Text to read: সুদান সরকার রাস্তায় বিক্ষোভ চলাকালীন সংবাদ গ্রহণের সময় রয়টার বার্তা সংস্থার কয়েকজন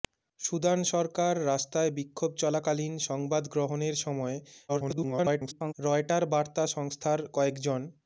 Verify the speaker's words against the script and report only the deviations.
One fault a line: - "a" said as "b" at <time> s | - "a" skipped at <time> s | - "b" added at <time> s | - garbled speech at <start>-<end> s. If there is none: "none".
- garbled speech at 4.7-5.7 s